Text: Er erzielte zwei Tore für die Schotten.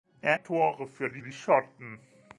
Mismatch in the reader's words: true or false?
true